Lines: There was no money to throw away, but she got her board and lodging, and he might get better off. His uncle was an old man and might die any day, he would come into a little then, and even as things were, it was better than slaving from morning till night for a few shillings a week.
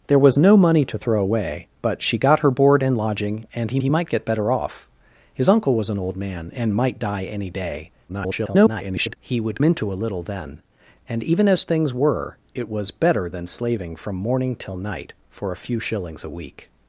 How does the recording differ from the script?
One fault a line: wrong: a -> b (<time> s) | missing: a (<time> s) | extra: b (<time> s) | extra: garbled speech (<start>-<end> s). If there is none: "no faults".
extra: he (3.8 s)
extra: garbled speech (8.1-9.2 s)
missing: come (9.6 s)